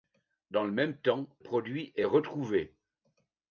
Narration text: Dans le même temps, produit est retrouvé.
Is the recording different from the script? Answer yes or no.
no